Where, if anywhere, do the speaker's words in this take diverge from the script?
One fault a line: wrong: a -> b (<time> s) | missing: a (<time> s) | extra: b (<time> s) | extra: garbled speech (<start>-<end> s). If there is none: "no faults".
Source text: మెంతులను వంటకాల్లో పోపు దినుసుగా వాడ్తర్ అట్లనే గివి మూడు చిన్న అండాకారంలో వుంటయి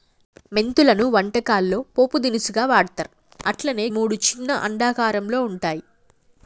missing: గివి (3.9 s)